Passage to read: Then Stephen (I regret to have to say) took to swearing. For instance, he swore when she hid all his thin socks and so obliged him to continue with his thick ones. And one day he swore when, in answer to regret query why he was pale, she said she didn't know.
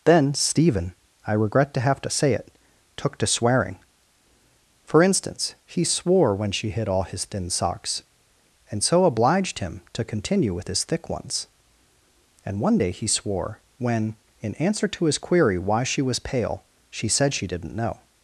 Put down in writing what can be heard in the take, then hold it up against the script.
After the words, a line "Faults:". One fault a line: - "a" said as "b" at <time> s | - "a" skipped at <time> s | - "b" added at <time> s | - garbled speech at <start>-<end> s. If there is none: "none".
Then Stephen (I regret to have to say it) took to swearing. For instance, he swore when she hid all his thin socks and so obliged him to continue with his thick ones. And one day he swore when, in answer to his query why she was pale, she said she didn't know.
Faults:
- "it" added at 2.3 s
- "regret" said as "his" at 15.1 s
- "he" said as "she" at 15.8 s